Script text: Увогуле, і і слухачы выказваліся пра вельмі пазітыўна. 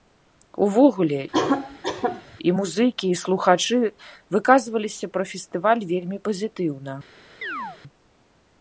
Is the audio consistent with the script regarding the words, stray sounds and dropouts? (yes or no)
no